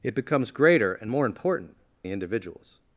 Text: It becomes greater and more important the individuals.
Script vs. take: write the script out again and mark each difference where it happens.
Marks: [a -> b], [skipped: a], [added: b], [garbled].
It becomes greater and more important the individuals.